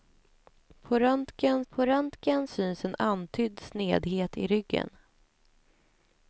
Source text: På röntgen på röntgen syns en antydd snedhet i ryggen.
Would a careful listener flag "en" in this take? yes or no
no